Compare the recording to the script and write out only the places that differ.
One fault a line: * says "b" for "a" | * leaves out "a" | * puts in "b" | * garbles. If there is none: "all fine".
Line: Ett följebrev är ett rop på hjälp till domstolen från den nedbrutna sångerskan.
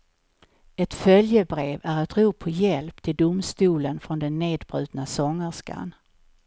all fine